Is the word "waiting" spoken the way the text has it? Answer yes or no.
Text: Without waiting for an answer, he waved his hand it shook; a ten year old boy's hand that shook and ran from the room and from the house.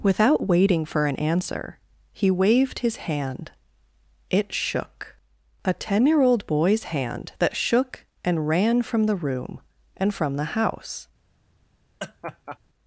yes